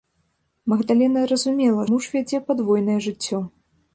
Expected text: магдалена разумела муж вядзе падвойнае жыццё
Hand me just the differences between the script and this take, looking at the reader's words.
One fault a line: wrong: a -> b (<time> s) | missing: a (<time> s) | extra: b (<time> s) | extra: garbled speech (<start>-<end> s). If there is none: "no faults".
no faults